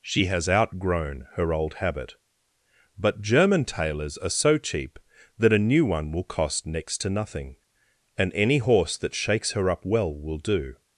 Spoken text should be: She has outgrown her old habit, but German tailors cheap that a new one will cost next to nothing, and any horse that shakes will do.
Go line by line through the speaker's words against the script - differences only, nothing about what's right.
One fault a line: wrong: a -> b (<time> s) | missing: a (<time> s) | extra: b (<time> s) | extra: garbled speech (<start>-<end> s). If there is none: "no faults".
extra: are so (4.2 s)
extra: her up well (9.5 s)